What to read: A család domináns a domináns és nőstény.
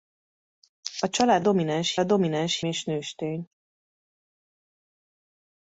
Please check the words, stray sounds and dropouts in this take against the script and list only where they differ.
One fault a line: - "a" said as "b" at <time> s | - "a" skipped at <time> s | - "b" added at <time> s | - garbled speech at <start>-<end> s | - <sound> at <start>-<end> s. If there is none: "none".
none